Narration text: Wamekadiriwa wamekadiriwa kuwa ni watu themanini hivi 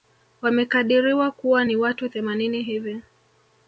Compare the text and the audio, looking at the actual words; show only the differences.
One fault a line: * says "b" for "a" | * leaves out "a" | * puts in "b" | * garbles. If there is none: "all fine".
* leaves out "wamekadiriwa"